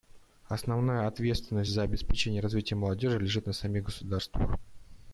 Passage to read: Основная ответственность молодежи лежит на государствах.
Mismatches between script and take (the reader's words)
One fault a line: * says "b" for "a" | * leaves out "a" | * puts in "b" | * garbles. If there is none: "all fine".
* puts in "за обеспечение развития"
* puts in "самих"